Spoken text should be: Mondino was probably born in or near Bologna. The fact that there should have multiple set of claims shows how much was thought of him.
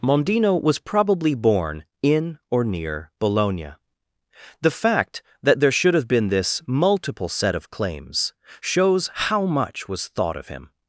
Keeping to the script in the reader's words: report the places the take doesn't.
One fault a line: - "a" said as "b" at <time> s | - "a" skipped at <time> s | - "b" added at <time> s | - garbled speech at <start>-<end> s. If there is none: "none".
- "been this" added at 6.1 s